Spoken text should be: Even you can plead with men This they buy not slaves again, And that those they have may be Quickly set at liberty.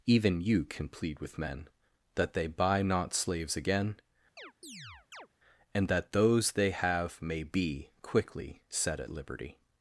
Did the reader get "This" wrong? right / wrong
wrong